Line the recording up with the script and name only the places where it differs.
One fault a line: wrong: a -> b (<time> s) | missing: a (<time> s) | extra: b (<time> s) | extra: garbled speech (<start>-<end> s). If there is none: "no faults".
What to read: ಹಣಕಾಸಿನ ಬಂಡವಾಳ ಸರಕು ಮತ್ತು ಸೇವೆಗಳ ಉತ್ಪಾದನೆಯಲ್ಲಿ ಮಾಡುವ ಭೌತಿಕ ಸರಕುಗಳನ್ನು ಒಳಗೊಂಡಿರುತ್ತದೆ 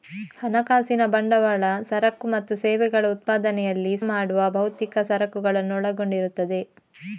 no faults